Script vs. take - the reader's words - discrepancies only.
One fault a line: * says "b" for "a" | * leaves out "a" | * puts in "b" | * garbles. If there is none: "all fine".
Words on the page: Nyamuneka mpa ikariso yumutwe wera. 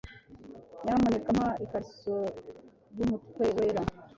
all fine